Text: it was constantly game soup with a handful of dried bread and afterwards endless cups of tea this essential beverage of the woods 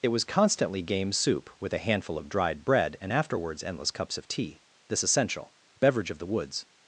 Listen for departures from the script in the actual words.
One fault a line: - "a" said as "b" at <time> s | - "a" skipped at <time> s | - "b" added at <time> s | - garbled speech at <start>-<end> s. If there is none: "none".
none